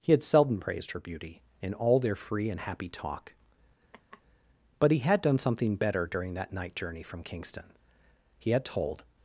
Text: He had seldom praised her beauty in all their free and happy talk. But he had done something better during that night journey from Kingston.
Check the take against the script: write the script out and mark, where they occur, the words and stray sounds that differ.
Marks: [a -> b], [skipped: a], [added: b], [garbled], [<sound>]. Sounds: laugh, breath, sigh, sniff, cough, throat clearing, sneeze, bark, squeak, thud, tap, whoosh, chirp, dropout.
He had seldom praised her beauty in all their free and happy talk. [laugh] But he had done something better during that night journey from Kingston. [added: He had told]